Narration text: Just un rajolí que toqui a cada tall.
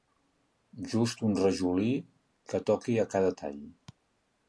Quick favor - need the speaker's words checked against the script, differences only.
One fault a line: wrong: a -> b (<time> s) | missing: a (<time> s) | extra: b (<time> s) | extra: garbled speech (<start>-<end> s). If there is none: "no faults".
no faults